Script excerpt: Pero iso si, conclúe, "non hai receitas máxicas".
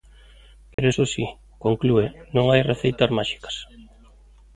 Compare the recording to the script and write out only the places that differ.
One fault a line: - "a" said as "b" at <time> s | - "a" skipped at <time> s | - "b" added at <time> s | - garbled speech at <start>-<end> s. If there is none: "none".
none